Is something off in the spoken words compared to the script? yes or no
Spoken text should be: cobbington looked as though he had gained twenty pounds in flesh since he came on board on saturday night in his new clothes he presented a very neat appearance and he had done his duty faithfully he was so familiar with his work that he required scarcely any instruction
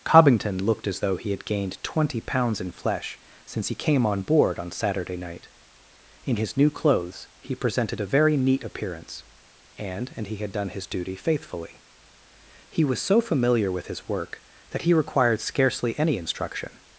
yes